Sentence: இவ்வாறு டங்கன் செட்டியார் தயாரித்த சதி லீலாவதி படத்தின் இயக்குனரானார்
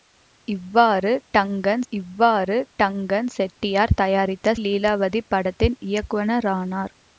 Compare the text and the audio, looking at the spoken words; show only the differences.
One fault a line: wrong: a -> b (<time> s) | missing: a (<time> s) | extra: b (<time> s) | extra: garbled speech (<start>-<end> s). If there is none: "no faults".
extra: இவ்வாறு டங்கன் (1.9 s)
missing: சதி (4.5 s)